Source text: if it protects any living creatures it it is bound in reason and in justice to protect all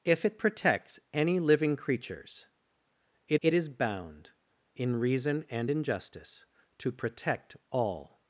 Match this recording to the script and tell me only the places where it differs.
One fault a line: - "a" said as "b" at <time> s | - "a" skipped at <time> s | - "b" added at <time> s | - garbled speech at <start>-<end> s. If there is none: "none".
none